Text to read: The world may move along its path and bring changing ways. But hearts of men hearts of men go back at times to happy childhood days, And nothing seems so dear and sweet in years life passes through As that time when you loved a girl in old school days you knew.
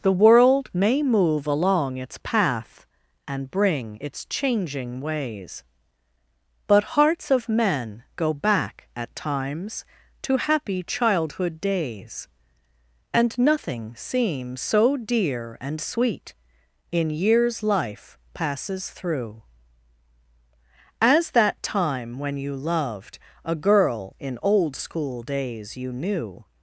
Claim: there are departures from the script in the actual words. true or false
true